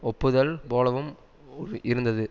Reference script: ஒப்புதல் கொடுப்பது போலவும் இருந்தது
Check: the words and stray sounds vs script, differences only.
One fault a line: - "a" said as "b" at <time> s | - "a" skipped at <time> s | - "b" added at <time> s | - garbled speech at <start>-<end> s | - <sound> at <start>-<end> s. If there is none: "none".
- "கொடுப்பது" skipped at 0.5 s